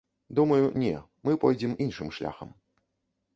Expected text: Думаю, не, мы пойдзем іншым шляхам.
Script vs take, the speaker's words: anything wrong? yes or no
no